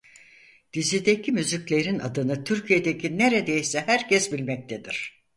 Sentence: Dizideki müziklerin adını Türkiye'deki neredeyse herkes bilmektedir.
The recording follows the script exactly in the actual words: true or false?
true